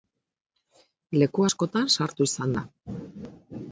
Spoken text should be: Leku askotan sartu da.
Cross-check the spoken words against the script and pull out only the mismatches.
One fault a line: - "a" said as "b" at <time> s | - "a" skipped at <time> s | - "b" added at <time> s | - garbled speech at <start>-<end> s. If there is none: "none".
- "izan" added at 2.3 s